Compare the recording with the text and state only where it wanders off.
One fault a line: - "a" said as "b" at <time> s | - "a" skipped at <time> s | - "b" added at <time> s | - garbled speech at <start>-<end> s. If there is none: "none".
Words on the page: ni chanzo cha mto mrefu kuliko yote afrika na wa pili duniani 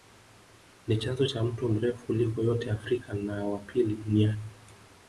none